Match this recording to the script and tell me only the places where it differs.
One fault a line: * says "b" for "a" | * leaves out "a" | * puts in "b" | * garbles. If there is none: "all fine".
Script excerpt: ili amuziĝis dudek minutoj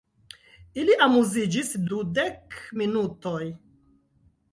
all fine